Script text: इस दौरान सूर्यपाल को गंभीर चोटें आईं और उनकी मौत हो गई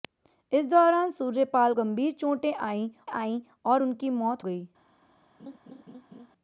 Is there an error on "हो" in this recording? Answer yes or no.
yes